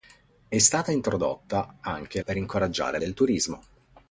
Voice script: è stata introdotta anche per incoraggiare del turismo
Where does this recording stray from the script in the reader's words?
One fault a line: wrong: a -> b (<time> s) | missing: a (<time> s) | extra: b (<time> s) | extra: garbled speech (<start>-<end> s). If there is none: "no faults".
no faults